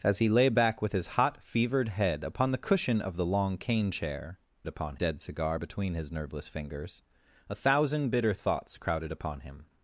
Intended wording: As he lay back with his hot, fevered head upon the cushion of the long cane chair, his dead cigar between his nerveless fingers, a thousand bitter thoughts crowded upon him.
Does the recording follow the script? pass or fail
fail